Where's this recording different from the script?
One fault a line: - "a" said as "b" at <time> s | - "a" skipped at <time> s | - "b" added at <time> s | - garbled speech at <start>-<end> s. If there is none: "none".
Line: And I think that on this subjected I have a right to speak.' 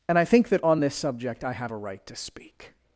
- "subjected" said as "subject" at 1.0 s